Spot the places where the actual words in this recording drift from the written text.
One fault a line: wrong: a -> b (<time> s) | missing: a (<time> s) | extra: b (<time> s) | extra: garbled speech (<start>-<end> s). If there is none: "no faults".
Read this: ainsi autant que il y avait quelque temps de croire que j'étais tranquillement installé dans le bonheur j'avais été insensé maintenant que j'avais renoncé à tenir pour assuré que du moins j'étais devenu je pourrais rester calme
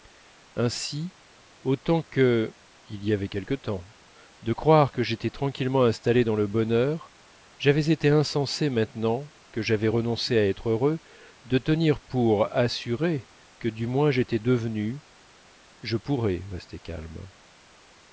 extra: être heureux de (10.5 s)